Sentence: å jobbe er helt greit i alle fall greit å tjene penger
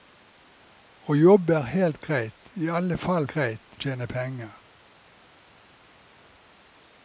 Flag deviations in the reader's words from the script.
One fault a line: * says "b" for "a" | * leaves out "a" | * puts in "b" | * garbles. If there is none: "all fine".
all fine